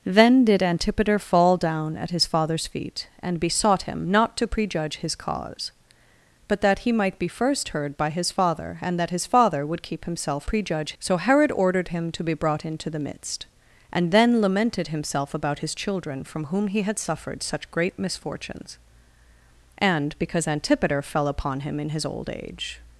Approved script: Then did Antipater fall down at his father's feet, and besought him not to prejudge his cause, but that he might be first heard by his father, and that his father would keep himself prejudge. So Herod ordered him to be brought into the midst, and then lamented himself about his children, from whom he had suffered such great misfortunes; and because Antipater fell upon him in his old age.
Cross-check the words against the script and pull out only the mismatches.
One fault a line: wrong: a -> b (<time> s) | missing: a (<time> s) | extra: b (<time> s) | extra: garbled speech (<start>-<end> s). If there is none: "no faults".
no faults